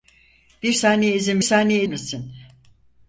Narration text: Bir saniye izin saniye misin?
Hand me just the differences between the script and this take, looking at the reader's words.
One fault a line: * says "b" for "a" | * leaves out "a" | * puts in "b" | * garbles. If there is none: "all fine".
all fine